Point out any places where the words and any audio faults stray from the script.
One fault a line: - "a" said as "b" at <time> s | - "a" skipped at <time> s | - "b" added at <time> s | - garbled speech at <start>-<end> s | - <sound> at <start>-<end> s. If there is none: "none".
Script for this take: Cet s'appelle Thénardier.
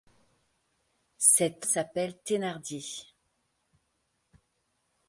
none